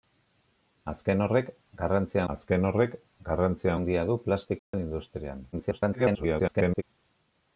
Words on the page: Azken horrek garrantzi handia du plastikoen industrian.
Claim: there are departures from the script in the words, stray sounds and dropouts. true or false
true